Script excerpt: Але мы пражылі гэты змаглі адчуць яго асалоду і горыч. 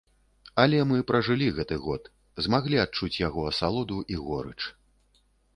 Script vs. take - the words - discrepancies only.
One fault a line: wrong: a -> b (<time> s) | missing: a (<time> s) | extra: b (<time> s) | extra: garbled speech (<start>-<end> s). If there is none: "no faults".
extra: год (1.9 s)